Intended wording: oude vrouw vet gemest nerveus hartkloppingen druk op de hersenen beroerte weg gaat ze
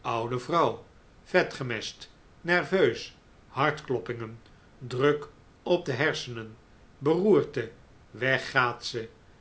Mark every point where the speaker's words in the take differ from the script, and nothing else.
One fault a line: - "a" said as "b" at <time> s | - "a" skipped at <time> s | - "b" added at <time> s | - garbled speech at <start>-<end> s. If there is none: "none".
none